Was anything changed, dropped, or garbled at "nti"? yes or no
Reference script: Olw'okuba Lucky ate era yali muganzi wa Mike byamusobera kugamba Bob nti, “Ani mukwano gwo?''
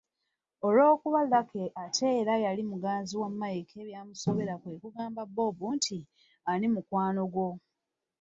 no